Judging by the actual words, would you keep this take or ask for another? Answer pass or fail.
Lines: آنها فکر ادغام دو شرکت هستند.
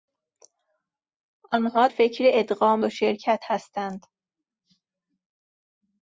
pass